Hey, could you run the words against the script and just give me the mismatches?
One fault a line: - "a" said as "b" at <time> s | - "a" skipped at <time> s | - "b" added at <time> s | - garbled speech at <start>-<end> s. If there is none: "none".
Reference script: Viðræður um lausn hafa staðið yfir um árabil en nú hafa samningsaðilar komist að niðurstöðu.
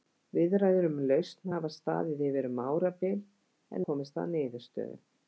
- "nú hafa samningsaðilar" skipped at 3.9 s